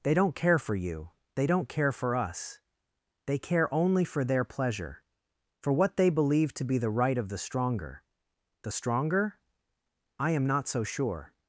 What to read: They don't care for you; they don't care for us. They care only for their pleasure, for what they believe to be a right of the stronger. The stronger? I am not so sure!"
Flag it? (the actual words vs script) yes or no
yes